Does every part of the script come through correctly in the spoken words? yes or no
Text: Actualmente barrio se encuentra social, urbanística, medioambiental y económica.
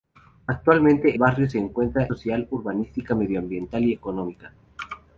yes